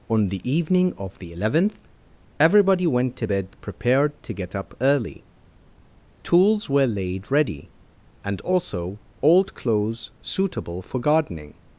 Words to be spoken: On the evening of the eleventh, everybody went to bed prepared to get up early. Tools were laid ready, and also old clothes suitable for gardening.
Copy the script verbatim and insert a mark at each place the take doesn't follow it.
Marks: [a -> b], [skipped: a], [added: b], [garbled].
On the evening of the eleventh, everybody went to bed prepared to get up early. Tools were laid ready, and also old clothes suitable for gardening.